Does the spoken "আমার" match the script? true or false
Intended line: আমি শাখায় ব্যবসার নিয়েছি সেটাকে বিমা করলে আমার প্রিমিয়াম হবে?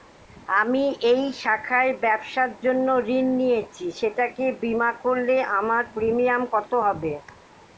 true